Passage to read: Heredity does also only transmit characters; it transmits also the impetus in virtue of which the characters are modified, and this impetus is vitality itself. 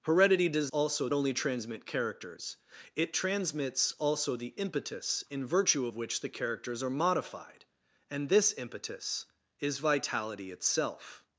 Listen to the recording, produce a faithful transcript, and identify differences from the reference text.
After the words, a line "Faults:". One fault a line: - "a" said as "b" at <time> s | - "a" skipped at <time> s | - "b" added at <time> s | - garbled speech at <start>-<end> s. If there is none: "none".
Heredity does also only transmit characters; it transmits also the impetus in virtue of which the characters are modified, and this impetus is vitality itself.
Faults:
none